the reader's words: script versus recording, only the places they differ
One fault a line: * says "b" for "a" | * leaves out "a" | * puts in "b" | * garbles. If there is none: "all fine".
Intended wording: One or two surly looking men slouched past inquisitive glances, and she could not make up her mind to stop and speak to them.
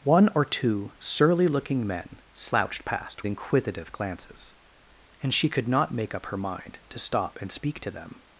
all fine